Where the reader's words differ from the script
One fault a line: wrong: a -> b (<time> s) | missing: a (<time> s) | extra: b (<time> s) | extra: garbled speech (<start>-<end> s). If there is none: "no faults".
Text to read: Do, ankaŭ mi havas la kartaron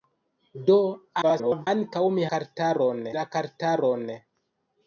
extra: garbled speech (1.2-1.7 s)
wrong: havas -> kartaron (2.3 s)